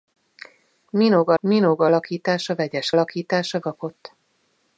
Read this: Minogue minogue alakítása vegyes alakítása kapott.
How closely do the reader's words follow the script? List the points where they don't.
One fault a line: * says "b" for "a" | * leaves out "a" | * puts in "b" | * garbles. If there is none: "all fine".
all fine